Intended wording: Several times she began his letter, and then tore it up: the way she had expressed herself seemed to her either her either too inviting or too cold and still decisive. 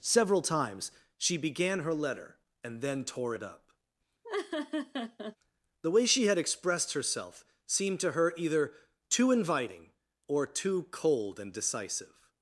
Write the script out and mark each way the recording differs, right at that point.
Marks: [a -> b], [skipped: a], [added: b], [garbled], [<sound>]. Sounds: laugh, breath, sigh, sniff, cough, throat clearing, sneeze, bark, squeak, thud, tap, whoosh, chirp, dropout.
Several times she began [his -> her] letter, and then tore it up: [laugh] the way she had expressed herself seemed to her either [skipped: her either] too inviting or too cold and [skipped: still] decisive.